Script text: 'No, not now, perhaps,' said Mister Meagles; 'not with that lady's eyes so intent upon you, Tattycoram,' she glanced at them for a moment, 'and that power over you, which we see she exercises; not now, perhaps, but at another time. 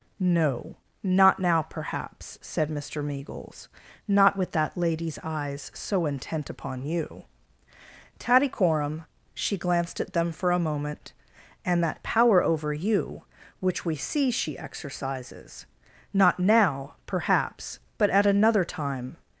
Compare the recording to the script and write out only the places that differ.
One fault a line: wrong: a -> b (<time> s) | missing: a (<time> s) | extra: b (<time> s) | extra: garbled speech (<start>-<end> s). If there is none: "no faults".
no faults